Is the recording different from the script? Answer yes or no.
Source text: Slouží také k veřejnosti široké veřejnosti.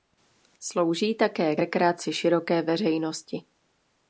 yes